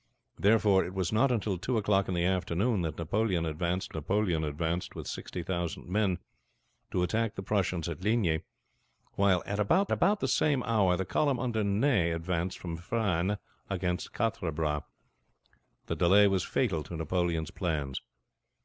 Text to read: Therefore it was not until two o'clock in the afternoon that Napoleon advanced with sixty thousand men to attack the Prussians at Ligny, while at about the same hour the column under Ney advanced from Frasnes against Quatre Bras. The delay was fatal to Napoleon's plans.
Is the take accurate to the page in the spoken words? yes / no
no